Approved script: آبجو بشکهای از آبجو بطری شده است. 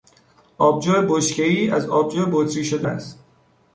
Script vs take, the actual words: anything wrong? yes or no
no